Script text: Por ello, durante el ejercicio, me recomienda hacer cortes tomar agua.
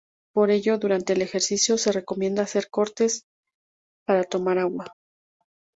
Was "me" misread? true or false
true